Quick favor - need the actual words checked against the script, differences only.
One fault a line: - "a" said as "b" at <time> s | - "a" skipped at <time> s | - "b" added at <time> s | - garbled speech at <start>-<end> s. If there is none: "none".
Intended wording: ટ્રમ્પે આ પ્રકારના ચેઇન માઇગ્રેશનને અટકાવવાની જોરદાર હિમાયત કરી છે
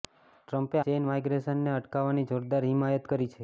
- "આ પ્રકારના" skipped at 0.8 s